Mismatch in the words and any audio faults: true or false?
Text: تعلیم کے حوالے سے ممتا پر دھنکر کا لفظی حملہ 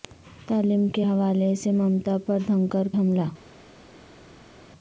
true